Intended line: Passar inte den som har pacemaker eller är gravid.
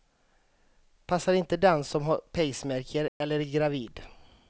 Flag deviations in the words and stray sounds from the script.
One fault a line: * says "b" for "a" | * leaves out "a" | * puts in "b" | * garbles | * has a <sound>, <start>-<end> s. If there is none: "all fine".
* has a dropout, 3.1-3.2 s